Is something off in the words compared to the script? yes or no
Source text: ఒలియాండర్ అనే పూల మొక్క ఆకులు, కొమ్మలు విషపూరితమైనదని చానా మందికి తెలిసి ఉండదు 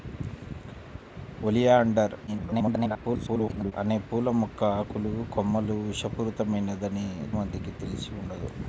yes